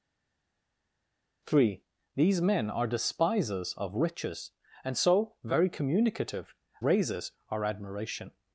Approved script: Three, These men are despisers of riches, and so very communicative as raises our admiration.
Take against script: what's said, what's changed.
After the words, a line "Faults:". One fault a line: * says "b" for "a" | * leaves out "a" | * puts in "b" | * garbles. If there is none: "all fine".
Three, These men are despisers of riches, and so very communicative raises our admiration.
Faults:
* leaves out "as"